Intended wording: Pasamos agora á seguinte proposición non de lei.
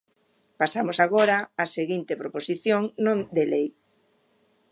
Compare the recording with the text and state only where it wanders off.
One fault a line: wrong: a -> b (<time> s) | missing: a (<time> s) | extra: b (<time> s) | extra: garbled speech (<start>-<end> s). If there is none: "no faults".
no faults